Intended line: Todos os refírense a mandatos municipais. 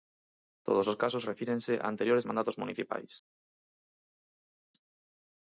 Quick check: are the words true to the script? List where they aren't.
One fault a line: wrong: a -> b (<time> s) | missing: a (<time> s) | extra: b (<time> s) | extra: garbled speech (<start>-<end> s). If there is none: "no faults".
extra: casos (1.0 s)
extra: anteriores (1.9 s)